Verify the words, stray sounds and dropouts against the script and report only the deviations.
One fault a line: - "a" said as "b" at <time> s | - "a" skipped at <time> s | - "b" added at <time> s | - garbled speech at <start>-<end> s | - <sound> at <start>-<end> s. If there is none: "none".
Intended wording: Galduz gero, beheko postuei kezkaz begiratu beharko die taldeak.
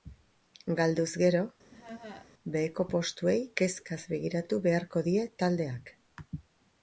- laugh at 1.7-2.3 s